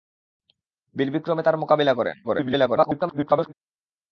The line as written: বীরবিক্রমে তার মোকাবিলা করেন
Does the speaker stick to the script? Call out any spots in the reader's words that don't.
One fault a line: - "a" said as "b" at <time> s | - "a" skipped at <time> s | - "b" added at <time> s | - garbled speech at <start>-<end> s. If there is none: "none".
- garbled speech at 2.2-3.5 s